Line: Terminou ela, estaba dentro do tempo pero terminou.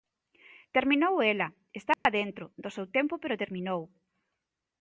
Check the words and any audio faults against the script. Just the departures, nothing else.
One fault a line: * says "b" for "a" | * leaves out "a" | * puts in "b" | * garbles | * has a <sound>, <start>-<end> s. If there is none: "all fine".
* has a dropout, 1.9-2.1 s
* puts in "seu"